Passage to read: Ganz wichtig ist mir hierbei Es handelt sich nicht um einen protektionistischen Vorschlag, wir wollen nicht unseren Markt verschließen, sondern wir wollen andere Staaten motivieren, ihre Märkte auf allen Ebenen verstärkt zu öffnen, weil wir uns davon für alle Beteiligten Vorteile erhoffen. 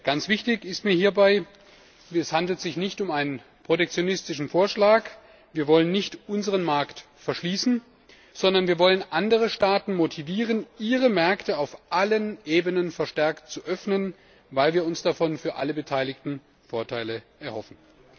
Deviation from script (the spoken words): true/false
false